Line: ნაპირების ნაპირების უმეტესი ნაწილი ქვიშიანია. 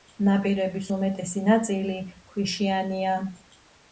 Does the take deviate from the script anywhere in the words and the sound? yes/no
yes